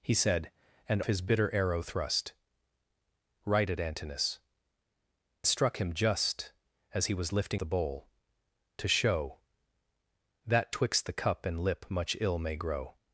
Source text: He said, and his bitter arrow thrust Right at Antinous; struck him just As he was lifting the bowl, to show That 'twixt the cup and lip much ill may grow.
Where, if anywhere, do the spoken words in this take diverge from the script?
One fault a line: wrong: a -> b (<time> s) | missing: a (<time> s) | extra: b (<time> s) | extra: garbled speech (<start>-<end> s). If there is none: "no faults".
no faults